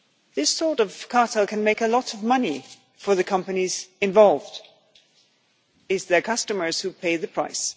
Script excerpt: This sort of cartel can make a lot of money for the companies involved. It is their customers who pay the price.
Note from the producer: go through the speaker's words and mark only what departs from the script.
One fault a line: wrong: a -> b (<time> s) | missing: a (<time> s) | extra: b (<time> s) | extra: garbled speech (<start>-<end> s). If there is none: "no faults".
no faults